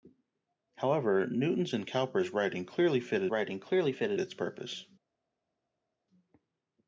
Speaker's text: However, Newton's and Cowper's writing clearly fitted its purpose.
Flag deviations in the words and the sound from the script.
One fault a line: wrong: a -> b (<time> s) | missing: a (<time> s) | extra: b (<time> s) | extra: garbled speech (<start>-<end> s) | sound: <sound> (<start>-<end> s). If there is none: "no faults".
extra: writing clearly fitted (3.3 s)